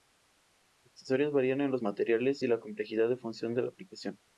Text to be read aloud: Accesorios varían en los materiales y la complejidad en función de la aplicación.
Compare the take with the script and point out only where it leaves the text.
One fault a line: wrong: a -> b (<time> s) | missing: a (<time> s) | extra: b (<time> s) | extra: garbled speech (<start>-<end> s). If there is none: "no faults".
no faults